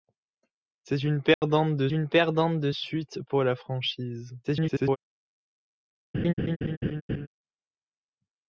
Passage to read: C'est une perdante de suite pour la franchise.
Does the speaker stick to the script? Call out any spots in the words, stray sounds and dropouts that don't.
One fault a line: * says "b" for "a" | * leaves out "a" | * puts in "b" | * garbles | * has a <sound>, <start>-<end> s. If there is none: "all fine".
* has a dropout, 1.3-1.4 s
* puts in "une perdante de"
* garbles
* has a laugh, 6.1-7.3 s